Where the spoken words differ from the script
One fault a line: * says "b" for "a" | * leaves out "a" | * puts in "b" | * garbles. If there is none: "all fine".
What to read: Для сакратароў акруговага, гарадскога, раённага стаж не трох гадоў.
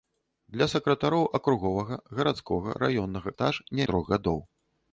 all fine